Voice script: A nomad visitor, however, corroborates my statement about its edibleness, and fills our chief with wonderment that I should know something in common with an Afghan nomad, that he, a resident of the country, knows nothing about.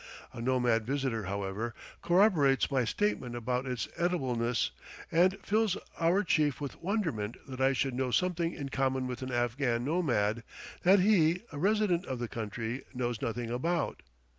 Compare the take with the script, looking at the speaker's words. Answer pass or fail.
pass